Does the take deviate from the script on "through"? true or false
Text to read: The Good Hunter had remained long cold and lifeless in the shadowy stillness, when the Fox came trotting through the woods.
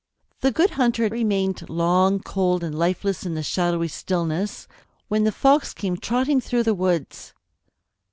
false